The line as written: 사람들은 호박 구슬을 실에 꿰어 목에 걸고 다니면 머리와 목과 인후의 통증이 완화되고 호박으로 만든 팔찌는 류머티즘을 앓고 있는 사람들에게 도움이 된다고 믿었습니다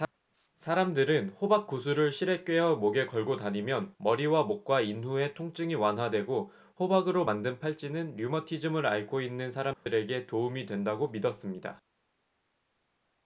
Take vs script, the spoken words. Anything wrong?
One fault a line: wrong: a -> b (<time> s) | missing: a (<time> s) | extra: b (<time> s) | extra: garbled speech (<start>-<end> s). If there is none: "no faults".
no faults